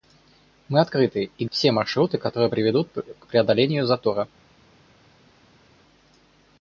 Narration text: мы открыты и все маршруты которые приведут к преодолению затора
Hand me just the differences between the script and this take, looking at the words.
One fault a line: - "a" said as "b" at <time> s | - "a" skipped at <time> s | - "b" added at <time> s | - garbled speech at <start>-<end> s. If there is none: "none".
none